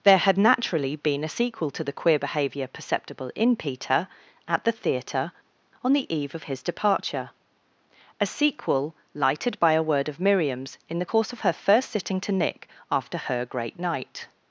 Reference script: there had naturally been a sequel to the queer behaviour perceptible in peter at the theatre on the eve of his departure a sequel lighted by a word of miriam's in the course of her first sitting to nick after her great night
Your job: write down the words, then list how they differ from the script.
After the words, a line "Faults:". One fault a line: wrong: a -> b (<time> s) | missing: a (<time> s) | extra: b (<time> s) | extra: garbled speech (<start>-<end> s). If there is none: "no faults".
there had naturally been a sequel to the queer behaviour perceptible in peter at the theatre on the eve of his departure a sequel lighted by a word of miriam's in the course of her first sitting to nick after her great night
Faults:
no faults